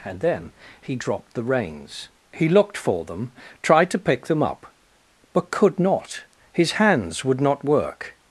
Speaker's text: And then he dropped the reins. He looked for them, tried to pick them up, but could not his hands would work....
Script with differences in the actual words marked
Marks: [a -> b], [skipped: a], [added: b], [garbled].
And then he dropped the reins. He looked for them, tried to pick them up, but could not his hands would [added: not] work....